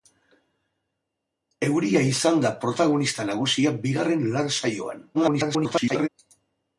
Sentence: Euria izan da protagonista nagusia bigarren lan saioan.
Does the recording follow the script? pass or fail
fail